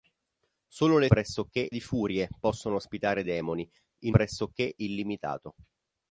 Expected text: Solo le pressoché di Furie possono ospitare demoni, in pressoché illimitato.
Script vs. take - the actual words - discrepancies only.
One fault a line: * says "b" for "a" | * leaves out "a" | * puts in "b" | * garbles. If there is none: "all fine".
all fine